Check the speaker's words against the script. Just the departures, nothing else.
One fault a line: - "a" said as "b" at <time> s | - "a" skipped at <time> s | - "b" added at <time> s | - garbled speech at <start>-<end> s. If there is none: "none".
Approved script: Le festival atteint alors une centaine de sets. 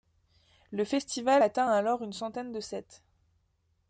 none